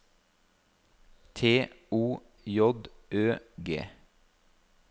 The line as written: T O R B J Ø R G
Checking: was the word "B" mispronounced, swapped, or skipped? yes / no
yes